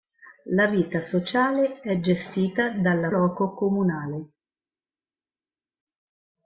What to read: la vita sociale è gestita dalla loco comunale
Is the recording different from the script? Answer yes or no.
no